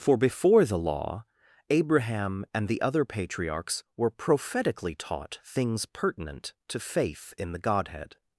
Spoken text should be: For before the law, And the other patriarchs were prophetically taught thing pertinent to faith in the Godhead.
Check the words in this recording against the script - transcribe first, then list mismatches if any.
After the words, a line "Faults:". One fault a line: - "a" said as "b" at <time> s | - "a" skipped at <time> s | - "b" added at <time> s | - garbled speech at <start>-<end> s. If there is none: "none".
For before the law, Abraham and the other patriarchs were prophetically taught things pertinent to faith in the Godhead.
Faults:
- "Abraham" added at 1.7 s
- "thing" said as "things" at 5.4 s